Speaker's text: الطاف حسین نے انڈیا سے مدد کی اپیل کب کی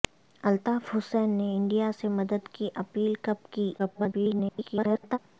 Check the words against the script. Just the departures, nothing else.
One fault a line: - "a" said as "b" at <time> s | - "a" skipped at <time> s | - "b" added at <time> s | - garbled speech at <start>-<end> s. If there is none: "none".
- garbled speech at 3.8-5.2 s